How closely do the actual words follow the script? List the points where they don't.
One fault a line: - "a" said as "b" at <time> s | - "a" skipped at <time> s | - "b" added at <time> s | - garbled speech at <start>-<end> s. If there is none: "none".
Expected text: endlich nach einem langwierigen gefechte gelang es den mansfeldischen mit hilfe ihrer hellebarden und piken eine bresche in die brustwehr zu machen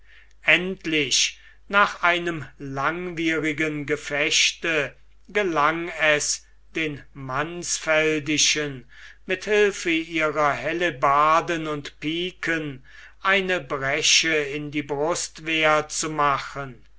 none